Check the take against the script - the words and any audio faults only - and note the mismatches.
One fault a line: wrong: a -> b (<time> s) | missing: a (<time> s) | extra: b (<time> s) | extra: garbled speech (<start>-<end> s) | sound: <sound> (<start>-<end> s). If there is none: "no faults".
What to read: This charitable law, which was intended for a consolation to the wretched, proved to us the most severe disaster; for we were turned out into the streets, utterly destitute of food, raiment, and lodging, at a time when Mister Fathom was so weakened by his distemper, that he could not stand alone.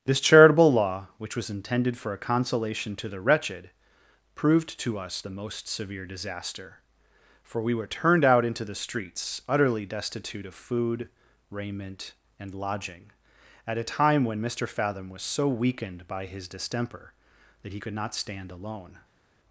no faults